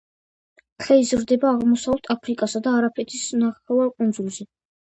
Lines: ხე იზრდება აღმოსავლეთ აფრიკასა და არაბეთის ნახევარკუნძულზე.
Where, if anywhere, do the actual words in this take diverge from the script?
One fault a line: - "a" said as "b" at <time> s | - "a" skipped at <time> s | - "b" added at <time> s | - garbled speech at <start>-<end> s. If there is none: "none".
none